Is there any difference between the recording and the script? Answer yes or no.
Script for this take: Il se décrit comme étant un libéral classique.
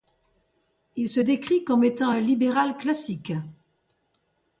no